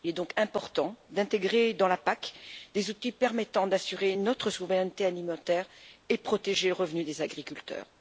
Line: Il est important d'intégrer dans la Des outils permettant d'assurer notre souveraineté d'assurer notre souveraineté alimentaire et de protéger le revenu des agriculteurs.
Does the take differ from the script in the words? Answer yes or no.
yes